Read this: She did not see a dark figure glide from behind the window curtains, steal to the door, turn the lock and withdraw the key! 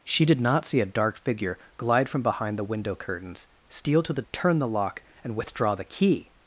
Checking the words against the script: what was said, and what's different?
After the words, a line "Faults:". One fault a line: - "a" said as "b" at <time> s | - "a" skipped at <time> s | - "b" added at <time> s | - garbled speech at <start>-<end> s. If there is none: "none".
She did not see a dark figure glide from behind the window curtains, steal to the turn the lock and withdraw the key!
Faults:
- "door" skipped at 4.2 s